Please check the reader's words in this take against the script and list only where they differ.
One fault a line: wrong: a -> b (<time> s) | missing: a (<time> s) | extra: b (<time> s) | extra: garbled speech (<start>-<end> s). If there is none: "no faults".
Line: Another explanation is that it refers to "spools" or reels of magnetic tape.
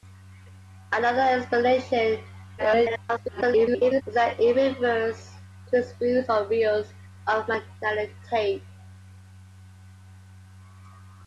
extra: garbled speech (2.6-4.0 s)